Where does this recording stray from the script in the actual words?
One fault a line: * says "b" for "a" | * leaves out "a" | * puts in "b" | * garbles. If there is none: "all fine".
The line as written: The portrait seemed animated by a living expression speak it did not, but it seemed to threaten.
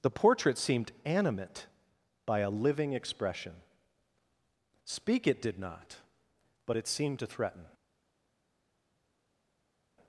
* says "animate" for "animated"